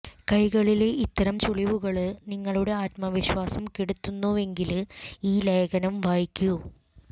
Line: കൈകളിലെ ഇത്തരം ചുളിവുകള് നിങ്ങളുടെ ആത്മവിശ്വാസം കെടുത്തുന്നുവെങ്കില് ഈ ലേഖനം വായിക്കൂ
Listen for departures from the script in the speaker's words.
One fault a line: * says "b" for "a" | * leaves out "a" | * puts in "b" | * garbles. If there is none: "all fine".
all fine